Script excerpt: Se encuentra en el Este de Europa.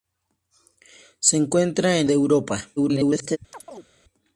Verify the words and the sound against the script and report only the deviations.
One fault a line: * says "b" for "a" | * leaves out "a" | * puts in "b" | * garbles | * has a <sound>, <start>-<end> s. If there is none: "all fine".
* leaves out "el Este"
* garbles
* has a chirp, 3.5-3.9 s